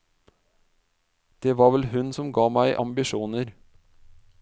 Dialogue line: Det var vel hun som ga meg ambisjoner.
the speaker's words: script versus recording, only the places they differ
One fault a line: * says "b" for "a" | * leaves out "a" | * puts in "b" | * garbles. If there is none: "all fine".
all fine